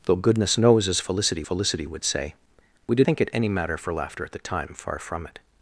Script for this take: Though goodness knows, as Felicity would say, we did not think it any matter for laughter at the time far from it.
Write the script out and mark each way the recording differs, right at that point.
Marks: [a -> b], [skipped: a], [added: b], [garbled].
Though goodness knows, as Felicity [added: Felicity] would say, we did [skipped: not] think it any matter for laughter at the time far from it.